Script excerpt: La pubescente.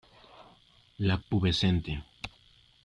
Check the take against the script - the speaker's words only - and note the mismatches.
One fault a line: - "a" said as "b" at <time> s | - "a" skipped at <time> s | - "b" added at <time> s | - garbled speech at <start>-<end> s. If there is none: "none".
none